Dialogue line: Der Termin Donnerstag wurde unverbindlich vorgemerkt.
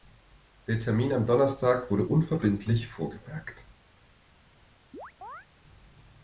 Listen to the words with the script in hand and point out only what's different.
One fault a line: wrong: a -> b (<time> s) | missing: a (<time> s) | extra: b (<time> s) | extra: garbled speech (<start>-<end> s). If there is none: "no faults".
extra: am (1.1 s)